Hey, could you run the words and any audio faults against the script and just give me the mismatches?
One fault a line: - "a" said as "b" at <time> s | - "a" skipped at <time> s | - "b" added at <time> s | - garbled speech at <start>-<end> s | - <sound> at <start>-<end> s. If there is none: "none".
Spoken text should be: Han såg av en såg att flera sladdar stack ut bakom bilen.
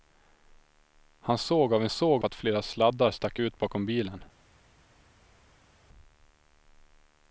none